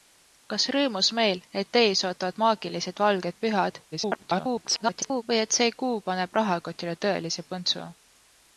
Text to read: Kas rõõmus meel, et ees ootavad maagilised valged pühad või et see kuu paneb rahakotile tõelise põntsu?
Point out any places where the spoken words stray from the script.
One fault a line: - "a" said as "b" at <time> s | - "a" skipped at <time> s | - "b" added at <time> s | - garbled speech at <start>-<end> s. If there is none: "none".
- garbled speech at 3.9-5.2 s